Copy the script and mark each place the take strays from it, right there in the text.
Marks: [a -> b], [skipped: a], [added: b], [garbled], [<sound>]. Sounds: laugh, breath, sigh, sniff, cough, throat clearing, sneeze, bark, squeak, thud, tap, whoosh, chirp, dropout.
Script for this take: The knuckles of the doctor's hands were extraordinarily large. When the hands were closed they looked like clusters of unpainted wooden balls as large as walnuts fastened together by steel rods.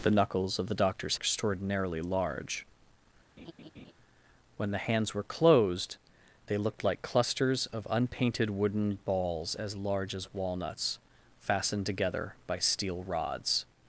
The knuckles of the doctor's [skipped: hands were] extraordinarily large. [laugh] When the hands were closed they looked like clusters of unpainted wooden balls as large as walnuts fastened together by steel rods.